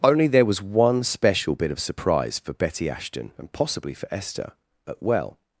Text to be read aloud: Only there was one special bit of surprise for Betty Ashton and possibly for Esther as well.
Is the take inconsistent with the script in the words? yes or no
yes